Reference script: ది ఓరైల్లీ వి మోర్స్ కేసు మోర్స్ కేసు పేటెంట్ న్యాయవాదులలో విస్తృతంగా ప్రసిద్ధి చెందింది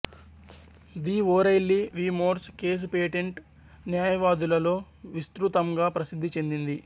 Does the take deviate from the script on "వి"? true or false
false